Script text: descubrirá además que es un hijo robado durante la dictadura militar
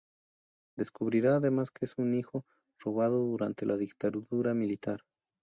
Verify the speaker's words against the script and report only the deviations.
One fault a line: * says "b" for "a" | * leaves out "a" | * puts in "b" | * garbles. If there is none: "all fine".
all fine